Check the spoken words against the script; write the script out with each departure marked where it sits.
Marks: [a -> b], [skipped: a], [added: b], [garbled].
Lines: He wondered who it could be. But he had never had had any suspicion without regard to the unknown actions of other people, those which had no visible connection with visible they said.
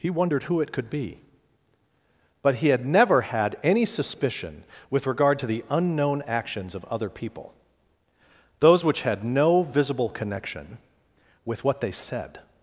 He wondered who it could be. But he had never had [skipped: had] any suspicion [without -> with] regard to the unknown actions of other people, those which had no visible connection with [visible -> what] they said.